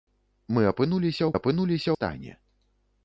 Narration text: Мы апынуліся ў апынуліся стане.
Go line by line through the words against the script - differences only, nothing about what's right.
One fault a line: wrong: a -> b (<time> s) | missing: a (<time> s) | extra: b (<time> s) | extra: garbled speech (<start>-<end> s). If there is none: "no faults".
no faults